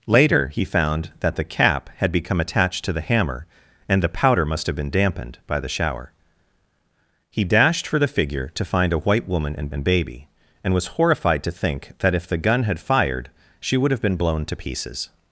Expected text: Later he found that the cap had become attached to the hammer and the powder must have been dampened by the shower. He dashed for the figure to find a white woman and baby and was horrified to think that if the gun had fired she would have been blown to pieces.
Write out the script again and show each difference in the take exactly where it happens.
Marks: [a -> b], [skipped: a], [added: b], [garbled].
Later he found that the cap had become attached to the hammer and the powder must have been dampened by the shower. He dashed for the figure to find a white woman and [added: and] baby and was horrified to think that if the gun had fired she would have been blown to pieces.